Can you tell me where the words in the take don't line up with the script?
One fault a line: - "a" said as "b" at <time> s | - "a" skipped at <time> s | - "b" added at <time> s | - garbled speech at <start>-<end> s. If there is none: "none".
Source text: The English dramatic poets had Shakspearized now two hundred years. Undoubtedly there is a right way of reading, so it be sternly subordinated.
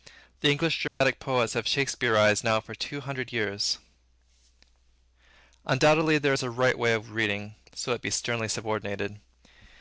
- "had" said as "have" at 1.5 s
- "for" added at 2.6 s